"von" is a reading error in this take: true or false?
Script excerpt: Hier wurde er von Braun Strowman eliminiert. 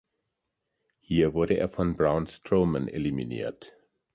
false